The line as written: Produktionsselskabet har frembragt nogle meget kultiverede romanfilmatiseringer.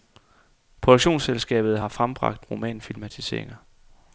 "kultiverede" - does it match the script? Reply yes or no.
no